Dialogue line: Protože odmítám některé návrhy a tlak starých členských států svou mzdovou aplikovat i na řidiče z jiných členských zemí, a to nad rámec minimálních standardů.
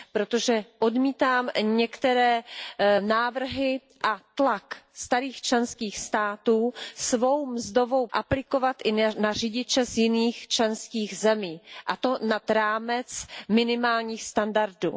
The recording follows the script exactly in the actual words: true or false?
true